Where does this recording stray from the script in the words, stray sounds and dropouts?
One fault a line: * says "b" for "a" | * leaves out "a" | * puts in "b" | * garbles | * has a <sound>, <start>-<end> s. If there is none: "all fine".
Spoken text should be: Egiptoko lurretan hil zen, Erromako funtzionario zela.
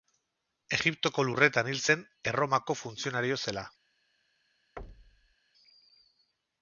* has a thud, 4.8-5.4 s